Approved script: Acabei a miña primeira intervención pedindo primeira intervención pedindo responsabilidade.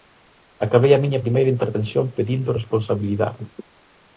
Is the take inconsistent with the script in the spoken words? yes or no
yes